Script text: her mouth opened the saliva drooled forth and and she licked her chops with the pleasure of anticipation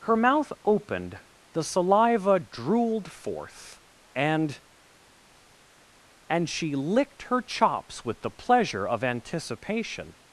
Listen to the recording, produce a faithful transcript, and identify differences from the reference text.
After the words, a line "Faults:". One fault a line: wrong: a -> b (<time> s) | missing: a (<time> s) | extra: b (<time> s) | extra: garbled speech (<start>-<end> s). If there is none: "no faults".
her mouth opened the saliva drooled forth and and she licked her chops with the pleasure of anticipation
Faults:
no faults